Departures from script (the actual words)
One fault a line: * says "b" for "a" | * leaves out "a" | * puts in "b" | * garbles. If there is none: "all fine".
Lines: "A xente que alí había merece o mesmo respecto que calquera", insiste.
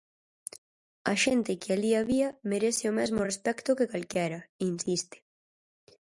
all fine